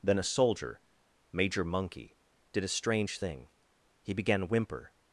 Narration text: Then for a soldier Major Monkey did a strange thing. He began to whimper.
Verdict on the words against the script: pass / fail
fail